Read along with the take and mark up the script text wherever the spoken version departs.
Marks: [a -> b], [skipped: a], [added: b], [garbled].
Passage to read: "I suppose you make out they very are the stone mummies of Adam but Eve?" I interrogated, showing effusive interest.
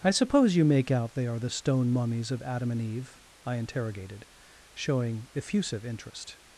"I suppose you make out they [skipped: very] are the stone mummies of Adam [but -> and] Eve?" I interrogated, showing effusive interest.